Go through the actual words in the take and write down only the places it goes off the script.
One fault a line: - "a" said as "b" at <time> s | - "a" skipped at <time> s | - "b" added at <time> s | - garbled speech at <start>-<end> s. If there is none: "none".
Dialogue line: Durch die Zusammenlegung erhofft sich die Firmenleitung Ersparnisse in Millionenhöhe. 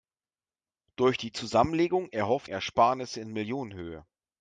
- "sich die Firmenleitung" skipped at 2.5 s